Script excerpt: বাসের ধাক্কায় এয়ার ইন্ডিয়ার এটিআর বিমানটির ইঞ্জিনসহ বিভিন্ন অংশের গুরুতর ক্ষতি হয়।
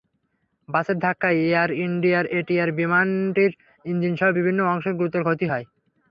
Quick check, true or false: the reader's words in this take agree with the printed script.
true